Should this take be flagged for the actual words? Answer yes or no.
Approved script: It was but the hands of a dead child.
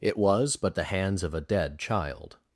no